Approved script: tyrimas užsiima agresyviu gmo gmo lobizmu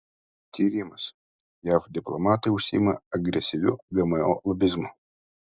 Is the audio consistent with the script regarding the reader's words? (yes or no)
no